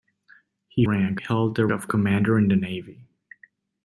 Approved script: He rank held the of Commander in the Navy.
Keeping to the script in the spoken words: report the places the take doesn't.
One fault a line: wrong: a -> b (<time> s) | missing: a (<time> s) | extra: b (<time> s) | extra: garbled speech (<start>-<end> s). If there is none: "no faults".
no faults